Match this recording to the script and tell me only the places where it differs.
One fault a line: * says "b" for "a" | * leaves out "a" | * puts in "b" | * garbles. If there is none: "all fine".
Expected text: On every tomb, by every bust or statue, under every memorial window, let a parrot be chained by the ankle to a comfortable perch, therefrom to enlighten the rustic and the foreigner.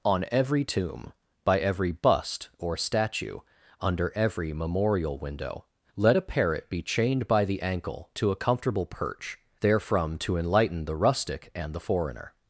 all fine